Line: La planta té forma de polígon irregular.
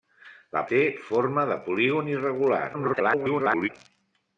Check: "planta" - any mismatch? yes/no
yes